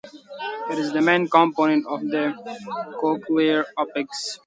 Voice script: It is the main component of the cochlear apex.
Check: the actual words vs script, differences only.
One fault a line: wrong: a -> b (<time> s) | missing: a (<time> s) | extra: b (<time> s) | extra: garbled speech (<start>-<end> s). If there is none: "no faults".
no faults